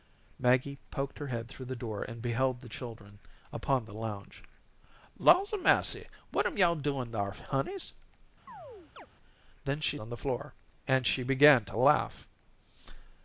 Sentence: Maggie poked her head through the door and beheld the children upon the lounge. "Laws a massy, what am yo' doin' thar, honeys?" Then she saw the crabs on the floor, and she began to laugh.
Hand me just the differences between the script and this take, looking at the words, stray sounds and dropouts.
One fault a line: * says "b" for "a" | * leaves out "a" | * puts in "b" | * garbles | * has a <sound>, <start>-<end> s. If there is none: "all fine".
* has a chirp, 8.5-9.1 s
* leaves out "saw the crabs"